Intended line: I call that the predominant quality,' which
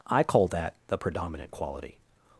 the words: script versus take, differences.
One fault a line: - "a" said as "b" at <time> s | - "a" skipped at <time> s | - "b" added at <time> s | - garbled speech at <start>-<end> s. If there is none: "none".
- "which" skipped at 2.0 s